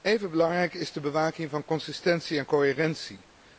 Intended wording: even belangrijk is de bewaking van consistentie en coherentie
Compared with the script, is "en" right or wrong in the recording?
right